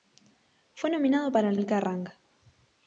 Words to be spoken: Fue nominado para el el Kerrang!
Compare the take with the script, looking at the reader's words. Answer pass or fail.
pass